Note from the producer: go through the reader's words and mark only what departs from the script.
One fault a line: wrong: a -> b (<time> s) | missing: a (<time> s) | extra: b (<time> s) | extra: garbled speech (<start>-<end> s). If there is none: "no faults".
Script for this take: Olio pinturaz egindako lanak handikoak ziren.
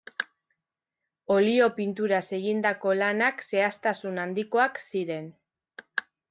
extra: zehaztasun (3.5 s)